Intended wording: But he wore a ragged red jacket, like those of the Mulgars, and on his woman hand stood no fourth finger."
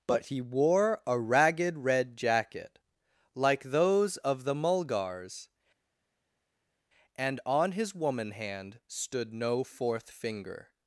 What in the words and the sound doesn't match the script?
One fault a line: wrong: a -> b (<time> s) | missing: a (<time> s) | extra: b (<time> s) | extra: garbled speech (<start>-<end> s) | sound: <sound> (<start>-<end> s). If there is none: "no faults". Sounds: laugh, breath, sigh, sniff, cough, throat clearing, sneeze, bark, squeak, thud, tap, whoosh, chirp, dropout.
no faults